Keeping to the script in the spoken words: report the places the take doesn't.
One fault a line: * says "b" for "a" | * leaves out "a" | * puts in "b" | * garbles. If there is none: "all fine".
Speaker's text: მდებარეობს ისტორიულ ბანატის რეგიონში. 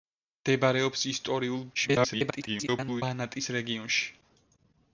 * garbles